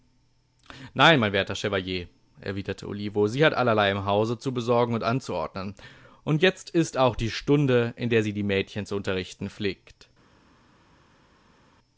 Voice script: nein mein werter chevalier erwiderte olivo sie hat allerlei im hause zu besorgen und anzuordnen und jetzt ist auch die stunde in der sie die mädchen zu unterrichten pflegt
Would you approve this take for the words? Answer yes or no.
yes